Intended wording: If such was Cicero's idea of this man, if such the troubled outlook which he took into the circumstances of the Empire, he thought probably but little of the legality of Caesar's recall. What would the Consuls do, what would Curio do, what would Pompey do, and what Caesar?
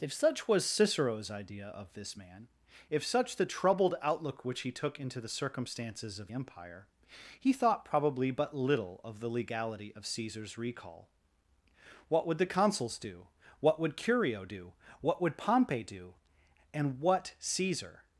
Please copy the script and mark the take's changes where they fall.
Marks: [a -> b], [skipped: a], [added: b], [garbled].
If such was Cicero's idea of this man, if such the troubled outlook which he took into the circumstances of [skipped: the] Empire, he thought probably but little of the legality of Caesar's recall. What would the Consuls do, what would Curio do, what would Pompey do, and what Caesar?